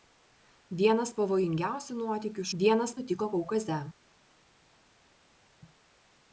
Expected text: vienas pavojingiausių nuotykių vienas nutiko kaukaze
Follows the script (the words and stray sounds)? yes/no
yes